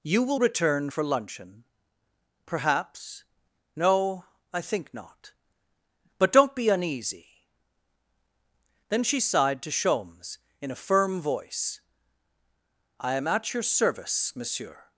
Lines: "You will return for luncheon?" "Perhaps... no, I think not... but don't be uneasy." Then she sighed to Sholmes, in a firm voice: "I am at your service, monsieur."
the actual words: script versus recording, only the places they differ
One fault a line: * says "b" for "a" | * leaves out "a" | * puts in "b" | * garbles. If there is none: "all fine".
all fine